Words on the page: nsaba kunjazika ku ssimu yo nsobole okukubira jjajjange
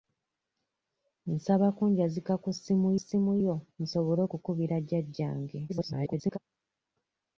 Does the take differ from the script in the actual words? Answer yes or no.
yes